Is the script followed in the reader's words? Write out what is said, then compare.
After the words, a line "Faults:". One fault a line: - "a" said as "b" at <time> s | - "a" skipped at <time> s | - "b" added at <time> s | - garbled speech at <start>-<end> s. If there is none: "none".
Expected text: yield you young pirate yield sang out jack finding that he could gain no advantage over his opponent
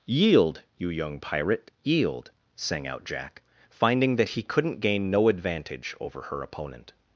yield you young pirate yield sang out jack finding that he couldn't gain no advantage over her opponent
Faults:
- "could" said as "couldn't" at 4.4 s
- "his" said as "her" at 6.2 s